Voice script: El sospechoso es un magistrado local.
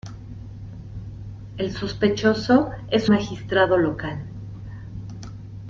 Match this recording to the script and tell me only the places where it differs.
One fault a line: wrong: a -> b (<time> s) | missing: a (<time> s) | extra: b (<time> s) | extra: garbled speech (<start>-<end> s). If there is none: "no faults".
missing: un (3.1 s)